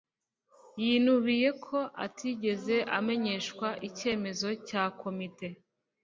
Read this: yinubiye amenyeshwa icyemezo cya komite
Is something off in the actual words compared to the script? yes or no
yes